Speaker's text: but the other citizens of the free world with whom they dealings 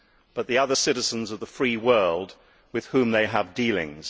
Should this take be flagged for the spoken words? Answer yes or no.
yes